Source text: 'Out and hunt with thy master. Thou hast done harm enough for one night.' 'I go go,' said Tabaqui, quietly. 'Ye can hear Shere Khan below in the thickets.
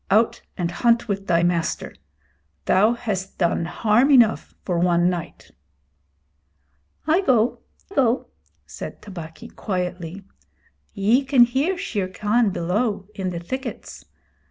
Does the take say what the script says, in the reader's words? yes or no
yes